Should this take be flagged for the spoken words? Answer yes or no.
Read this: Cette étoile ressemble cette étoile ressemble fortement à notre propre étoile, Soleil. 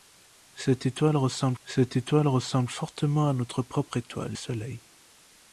no